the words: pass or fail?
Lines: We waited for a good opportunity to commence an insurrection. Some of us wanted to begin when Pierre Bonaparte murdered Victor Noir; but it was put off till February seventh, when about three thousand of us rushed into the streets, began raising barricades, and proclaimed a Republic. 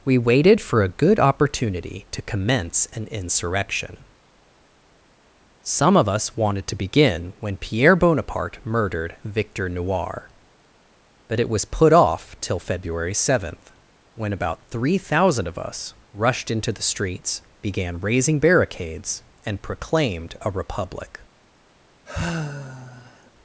pass